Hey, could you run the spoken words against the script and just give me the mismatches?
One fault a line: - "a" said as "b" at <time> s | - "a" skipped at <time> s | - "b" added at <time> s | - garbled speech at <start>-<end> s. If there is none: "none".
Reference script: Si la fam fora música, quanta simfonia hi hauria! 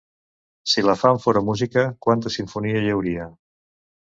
none